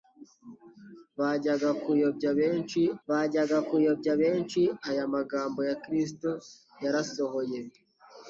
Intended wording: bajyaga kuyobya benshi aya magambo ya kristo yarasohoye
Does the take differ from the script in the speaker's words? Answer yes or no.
yes